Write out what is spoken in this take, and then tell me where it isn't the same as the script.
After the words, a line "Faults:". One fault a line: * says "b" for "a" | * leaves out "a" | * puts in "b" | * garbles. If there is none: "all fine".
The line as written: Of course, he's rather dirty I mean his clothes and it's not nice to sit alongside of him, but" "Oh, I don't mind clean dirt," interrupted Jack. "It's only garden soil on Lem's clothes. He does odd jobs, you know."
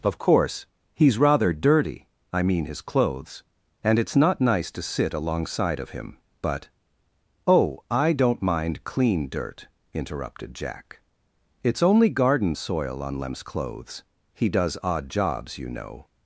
Of course, he's rather dirty I mean his clothes and it's not nice to sit alongside of him, but" "Oh, I don't mind clean dirt," interrupted Jack. "It's only garden soil on Lem's clothes. He does odd jobs, you know."
Faults:
all fine